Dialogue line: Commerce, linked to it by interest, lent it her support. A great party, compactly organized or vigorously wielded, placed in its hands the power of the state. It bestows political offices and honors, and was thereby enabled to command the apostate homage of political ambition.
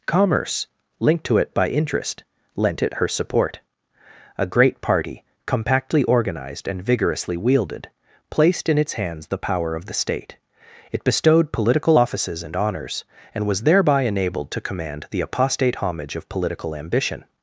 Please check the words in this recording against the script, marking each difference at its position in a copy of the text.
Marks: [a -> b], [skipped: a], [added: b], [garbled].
Commerce, linked to it by interest, lent it her support. A great party, compactly organized [or -> and] vigorously wielded, placed in its hands the power of the state. It [bestows -> bestowed] political offices and honors, and was thereby enabled to command the apostate homage of political ambition.